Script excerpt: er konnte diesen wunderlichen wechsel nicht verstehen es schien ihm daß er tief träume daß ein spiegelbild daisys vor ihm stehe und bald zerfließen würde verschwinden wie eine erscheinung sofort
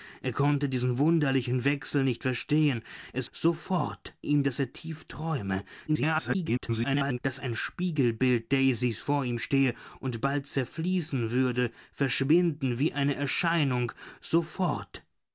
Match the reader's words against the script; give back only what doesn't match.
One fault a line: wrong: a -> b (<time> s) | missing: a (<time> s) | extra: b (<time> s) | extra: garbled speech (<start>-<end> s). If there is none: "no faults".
wrong: schien -> sofort (3.3 s)
extra: garbled speech (5.9-7.2 s)